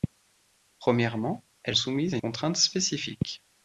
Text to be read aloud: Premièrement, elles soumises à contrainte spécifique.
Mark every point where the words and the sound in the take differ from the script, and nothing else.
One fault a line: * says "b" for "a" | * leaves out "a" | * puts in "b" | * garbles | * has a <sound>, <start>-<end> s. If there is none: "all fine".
all fine